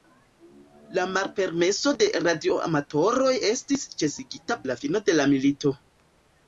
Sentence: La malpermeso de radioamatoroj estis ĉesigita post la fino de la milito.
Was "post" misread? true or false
true